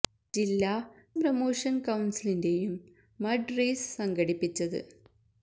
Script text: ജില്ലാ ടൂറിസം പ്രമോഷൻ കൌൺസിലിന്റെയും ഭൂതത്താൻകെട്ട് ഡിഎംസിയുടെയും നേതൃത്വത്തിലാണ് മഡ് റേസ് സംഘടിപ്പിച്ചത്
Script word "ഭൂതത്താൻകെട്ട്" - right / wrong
wrong